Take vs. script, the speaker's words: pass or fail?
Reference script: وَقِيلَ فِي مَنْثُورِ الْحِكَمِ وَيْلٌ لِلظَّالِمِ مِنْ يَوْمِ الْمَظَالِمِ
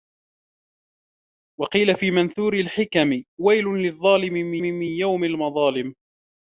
fail